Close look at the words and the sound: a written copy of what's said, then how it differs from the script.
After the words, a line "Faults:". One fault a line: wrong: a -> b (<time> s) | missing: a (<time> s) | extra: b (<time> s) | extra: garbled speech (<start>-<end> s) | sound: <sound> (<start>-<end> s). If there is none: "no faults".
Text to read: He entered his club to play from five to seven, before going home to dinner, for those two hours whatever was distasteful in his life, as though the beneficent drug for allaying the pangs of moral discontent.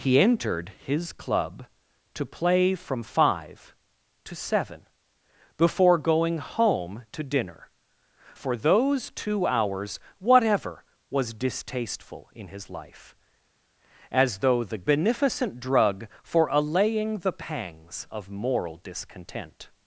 He entered his club to play from five to seven, before going home to dinner, for those two hours whatever was distasteful in his life, as though the beneficent drug for allaying the pangs of moral discontent.
Faults:
no faults